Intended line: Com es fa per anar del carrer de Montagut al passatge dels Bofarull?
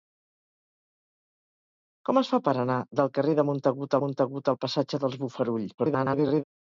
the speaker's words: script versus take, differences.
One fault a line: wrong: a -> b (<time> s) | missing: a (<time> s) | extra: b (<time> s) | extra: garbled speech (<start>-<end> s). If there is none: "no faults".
extra: Montagut (4.0 s)
extra: garbled speech (5.8-6.4 s)